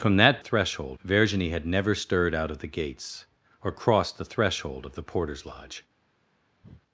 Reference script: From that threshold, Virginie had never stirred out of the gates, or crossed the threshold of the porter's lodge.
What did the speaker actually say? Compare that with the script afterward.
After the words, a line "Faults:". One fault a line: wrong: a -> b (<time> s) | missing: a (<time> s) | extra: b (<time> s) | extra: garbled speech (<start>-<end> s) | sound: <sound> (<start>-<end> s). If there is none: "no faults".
From that threshold, Virginie had never stirred out of the gates, or crossed the threshold of the porter's lodge.
Faults:
sound: breath (6.6-6.8 s)